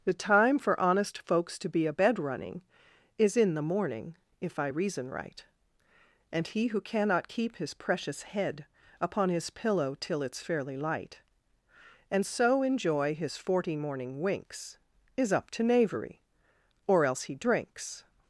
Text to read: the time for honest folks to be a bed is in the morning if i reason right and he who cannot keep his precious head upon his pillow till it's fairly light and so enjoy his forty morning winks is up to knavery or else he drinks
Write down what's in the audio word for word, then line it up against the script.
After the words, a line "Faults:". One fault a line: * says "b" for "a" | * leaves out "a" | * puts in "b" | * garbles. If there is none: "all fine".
the time for honest folks to be a bed running is in the morning if i reason right and he who cannot keep his precious head upon his pillow till it's fairly light and so enjoy his forty morning winks is up to knavery or else he drinks
Faults:
* puts in "running"